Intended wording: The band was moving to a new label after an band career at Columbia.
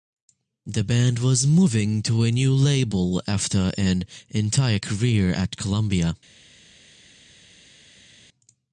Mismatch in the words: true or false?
true